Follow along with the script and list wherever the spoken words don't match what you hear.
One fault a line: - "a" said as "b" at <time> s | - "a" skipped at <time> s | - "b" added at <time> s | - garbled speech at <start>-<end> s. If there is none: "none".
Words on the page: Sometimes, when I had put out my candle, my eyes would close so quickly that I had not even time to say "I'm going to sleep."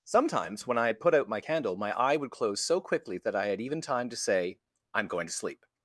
- "eyes" said as "eye" at 1.9 s
- "not" skipped at 3.6 s